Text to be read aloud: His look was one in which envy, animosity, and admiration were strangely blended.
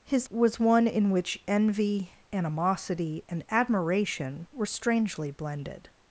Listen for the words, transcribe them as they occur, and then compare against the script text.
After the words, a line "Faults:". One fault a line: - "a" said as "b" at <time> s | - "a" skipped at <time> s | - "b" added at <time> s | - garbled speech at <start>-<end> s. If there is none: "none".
His was one in which envy, animosity, and admiration were strangely blended.
Faults:
- "look" skipped at 0.3 s